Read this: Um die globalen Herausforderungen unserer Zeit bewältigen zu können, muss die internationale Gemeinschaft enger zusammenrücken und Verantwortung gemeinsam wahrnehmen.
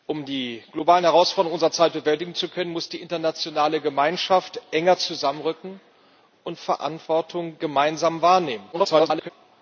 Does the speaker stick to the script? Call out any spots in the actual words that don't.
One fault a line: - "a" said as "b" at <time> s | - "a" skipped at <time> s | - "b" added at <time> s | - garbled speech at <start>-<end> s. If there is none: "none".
- garbled speech at 8.7-9.3 s